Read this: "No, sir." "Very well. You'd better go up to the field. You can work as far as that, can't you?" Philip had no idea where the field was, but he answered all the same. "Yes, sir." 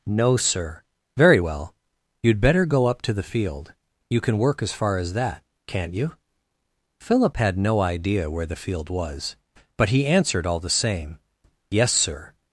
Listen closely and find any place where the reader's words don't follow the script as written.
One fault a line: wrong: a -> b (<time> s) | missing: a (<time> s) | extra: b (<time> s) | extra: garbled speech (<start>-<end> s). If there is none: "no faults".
no faults